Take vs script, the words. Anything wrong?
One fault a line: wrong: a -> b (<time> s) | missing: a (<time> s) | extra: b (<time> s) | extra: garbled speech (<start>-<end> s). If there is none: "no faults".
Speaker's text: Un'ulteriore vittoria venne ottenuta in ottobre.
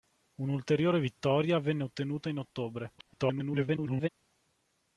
extra: garbled speech (3.0-4.1 s)